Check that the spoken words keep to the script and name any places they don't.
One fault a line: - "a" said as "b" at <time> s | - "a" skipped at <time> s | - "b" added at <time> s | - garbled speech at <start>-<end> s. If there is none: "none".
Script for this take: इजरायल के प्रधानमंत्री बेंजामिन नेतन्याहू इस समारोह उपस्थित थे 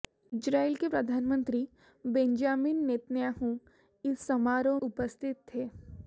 none